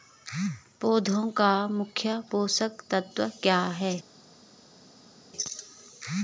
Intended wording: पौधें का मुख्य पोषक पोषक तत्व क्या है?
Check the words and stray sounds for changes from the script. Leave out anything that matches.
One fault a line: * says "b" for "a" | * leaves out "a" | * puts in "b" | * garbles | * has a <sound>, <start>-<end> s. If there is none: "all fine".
* leaves out "पोषक"